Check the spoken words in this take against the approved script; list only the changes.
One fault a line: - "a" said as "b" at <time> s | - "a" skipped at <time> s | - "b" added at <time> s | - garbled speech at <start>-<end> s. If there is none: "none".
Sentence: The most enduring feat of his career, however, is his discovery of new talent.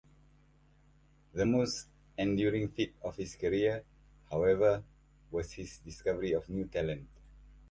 - "is" said as "was" at 5.3 s